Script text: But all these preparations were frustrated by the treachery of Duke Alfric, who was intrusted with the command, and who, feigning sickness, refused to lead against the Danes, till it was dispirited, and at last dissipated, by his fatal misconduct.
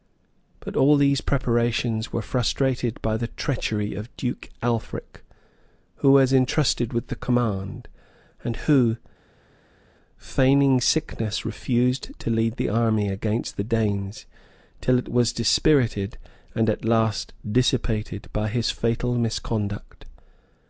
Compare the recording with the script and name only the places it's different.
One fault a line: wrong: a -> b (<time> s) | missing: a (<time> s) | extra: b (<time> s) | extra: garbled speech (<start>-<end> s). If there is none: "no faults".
extra: the army (12.6 s)